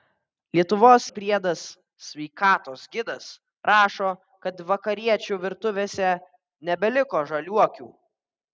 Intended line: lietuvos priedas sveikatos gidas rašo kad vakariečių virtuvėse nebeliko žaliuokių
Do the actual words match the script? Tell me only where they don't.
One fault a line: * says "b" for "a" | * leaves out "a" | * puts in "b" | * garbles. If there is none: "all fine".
all fine